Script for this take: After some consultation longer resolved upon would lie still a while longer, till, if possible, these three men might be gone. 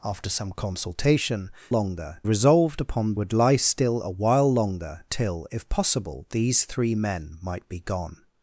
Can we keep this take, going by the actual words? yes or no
yes